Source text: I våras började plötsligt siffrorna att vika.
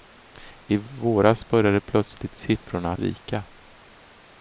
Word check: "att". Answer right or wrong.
wrong